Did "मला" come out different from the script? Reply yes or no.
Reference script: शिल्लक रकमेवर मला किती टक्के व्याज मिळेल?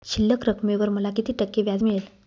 no